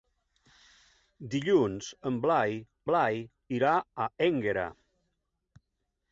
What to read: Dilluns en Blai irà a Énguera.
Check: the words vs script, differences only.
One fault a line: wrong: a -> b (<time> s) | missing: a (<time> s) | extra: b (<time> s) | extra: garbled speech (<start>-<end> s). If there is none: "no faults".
extra: Blai (2.9 s)